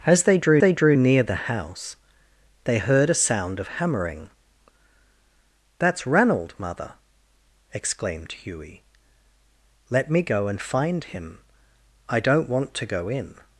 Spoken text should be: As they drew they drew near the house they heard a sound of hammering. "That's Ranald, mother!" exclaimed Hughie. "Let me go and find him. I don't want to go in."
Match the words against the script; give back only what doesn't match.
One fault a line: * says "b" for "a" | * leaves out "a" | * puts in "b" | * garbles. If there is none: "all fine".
all fine